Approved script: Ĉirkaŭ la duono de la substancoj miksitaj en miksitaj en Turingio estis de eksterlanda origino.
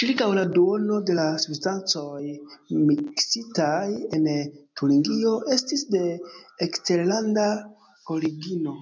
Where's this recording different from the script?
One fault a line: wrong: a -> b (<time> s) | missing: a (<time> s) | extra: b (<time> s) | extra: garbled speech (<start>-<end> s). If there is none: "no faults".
missing: miksitaj en (4.3 s)